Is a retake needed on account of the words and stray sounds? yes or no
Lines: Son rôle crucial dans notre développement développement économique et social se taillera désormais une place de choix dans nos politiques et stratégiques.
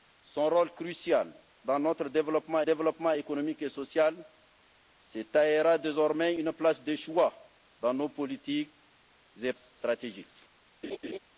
yes